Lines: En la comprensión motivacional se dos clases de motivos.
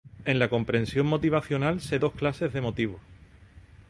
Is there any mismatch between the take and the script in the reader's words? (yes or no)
no